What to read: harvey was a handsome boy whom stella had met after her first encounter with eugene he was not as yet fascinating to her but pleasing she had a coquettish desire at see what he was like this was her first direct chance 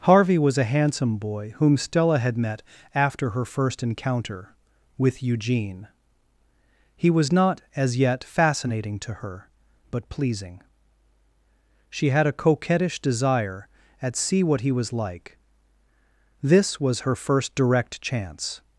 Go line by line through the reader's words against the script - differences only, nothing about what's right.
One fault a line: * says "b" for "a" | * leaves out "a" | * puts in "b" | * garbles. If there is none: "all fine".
all fine